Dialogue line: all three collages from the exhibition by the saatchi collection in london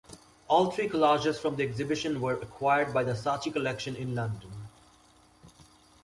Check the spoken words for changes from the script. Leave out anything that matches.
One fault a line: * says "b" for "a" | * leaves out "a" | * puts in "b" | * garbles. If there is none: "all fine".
* puts in "were acquired"